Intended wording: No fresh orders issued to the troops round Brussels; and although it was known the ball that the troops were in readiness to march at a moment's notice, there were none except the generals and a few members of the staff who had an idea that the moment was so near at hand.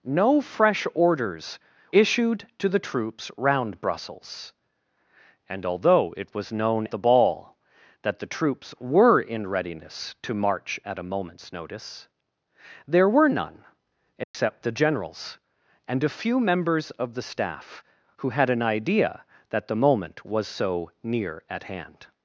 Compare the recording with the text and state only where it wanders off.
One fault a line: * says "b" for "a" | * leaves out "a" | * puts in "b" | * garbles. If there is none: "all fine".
all fine